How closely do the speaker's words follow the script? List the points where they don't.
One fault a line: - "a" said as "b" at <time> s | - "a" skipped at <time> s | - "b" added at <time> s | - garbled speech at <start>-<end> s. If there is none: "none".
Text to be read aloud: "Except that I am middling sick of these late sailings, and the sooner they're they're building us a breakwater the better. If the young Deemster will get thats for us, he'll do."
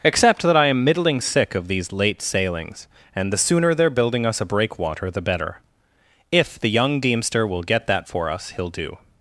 - "they're" skipped at 3.9 s
- "thats" said as "that" at 7.9 s